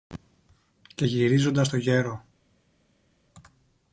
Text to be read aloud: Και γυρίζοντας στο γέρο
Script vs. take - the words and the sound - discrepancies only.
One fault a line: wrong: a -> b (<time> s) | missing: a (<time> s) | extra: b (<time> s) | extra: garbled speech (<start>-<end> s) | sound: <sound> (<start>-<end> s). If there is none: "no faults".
no faults